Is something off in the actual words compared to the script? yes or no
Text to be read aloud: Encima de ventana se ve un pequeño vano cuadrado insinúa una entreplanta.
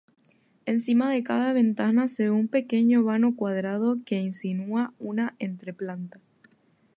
yes